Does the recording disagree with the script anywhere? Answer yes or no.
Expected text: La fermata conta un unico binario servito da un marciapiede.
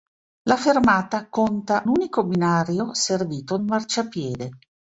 yes